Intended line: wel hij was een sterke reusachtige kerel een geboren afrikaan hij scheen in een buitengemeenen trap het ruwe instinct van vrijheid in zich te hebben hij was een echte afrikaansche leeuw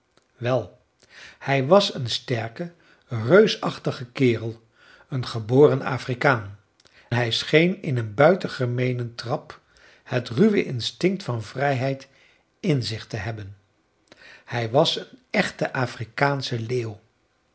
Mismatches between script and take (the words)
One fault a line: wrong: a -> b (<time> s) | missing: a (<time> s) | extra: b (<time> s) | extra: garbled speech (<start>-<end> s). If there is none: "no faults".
no faults